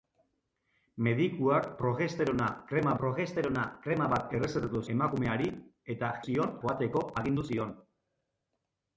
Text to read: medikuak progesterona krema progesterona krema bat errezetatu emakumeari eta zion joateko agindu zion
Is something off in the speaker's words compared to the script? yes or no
no